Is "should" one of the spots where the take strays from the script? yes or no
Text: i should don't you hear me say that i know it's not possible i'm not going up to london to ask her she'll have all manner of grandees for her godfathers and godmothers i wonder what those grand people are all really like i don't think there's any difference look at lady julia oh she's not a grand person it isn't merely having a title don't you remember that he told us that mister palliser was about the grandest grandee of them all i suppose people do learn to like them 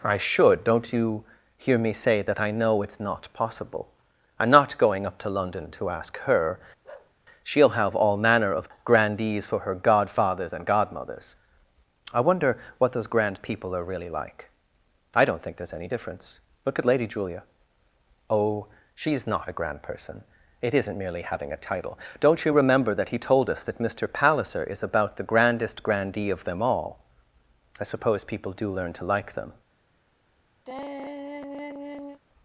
no